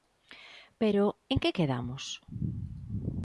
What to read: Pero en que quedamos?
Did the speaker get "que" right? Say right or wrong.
right